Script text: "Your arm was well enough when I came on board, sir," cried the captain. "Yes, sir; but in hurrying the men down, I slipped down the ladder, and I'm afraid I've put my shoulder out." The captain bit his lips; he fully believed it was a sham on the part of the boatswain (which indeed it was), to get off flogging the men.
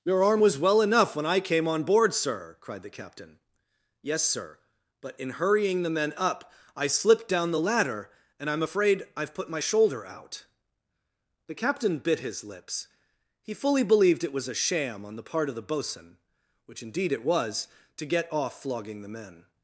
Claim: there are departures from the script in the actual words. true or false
true